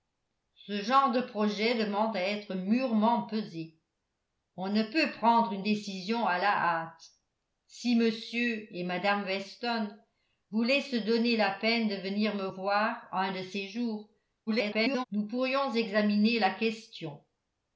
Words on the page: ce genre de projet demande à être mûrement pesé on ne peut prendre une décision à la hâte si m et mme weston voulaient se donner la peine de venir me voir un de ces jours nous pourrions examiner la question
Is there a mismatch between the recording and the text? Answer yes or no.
yes